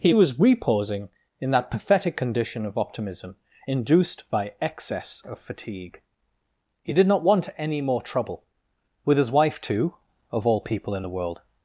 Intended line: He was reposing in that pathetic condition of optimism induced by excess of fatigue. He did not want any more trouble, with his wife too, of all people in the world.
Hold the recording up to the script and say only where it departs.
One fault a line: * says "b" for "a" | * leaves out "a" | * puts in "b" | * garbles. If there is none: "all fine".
all fine